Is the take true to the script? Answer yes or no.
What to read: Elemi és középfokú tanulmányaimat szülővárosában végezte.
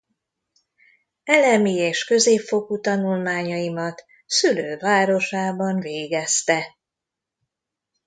yes